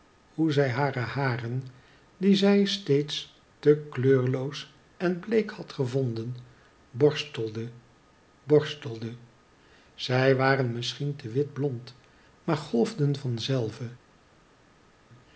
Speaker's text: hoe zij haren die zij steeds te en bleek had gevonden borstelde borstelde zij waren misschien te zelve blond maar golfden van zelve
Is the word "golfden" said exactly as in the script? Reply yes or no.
yes